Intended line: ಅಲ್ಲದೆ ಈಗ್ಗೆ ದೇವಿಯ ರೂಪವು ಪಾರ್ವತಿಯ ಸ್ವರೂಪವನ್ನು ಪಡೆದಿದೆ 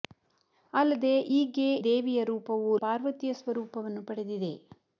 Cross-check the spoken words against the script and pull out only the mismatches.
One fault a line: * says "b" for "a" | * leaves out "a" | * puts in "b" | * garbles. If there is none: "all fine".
all fine